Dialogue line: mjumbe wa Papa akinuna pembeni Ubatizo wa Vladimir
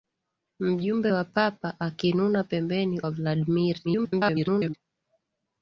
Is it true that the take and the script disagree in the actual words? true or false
true